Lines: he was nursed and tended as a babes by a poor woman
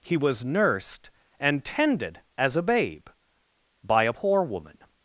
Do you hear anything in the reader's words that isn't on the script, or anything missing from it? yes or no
yes